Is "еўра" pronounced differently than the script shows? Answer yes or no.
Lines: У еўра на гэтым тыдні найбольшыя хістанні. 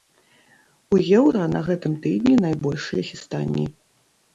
no